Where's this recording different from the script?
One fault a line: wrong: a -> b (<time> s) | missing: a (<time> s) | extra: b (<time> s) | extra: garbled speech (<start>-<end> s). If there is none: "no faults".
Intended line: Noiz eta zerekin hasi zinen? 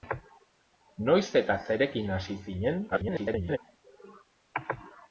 extra: garbled speech (2.9-3.6 s)